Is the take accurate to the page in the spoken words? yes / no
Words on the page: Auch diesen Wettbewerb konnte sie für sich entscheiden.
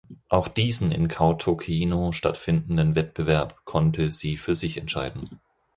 no